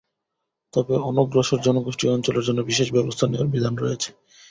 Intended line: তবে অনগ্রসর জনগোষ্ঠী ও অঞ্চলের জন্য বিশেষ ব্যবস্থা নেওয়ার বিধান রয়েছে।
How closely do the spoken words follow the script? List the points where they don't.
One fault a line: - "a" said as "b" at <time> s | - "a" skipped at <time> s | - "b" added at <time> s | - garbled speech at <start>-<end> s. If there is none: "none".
none